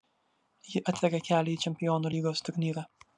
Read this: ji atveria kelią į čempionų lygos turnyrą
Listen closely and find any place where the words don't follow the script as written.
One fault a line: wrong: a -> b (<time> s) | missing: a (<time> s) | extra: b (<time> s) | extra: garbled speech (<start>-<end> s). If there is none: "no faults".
no faults